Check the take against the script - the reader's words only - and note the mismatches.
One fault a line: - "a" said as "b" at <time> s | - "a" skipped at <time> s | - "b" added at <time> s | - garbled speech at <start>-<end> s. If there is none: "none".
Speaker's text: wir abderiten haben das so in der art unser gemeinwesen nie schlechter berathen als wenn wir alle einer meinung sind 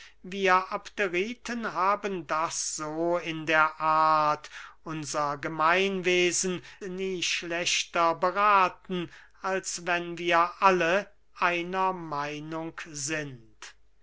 none